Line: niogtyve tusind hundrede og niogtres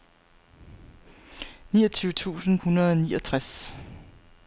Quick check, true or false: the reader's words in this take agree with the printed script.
true